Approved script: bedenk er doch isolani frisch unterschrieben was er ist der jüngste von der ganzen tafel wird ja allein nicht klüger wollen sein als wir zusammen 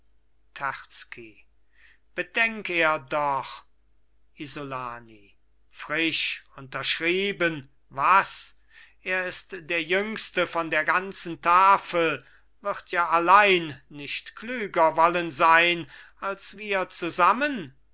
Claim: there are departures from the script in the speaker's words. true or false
false